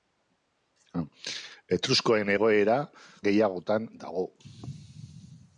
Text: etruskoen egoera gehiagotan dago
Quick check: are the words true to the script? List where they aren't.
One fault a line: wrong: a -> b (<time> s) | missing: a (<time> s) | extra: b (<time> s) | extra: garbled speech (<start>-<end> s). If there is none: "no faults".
no faults